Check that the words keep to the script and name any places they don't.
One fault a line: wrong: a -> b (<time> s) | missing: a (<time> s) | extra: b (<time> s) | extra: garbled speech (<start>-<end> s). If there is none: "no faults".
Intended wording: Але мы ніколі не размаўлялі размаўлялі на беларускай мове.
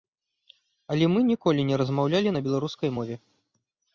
missing: размаўлялі (2.3 s)